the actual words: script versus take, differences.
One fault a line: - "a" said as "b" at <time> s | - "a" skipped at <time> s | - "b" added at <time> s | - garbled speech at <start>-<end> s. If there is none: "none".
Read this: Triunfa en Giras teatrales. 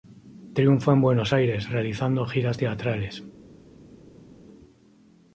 - "Buenos Aires realizando" added at 1.0 s